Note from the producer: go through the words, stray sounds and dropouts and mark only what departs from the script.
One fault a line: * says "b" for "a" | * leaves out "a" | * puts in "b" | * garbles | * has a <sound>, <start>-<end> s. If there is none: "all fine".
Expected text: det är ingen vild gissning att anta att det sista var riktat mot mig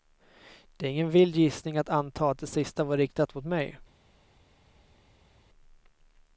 all fine